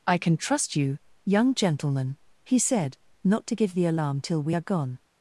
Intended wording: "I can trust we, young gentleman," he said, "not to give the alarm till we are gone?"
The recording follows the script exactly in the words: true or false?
false